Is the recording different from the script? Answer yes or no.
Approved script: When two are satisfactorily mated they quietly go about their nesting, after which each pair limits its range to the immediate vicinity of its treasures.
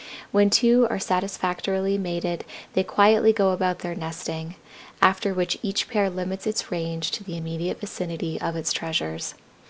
no